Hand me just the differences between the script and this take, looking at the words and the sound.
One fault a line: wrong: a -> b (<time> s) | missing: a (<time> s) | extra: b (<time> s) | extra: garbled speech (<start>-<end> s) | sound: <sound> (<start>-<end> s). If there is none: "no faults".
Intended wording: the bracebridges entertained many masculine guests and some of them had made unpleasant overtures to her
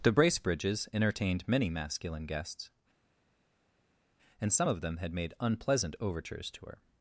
no faults